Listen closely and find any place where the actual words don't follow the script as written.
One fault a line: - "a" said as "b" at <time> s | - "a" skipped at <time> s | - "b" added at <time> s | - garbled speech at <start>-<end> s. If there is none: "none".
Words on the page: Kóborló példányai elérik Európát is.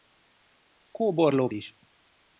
- "példányai elérik Európát" skipped at 1.5 s